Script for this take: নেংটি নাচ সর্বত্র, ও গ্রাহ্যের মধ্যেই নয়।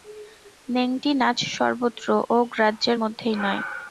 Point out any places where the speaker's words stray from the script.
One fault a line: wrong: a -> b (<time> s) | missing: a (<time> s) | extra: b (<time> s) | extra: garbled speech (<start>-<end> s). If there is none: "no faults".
no faults